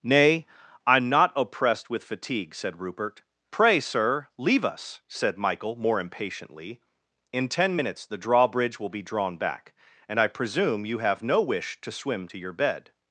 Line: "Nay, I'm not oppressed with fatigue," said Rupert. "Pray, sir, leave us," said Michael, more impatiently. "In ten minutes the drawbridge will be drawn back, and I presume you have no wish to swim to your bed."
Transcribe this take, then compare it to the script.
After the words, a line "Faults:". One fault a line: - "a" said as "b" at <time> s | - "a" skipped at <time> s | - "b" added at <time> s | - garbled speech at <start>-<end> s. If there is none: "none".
"Nay, I'm not oppressed with fatigue," said Rupert. "Pray, sir, leave us," said Michael, more impatiently. "In ten minutes the drawbridge will be drawn back, and I presume you have no wish to swim to your bed."
Faults:
none